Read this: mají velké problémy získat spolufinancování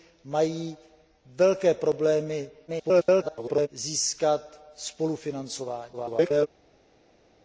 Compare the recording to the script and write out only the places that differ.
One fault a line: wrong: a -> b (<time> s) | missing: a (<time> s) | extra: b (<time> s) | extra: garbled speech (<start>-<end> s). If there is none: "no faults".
extra: garbled speech (2.7-3.7 s)
extra: garbled speech (5.9-6.5 s)